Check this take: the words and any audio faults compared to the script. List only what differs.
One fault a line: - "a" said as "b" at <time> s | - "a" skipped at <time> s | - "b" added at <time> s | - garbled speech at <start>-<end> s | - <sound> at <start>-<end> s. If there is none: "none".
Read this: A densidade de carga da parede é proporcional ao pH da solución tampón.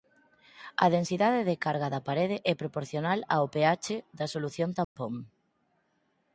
- dropout at 4.8-5.0 s